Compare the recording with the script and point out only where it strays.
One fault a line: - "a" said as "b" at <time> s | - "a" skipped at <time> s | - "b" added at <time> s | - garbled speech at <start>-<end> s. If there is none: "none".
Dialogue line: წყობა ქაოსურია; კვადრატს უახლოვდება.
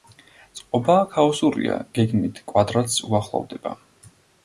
- "გეგმით" added at 2.0 s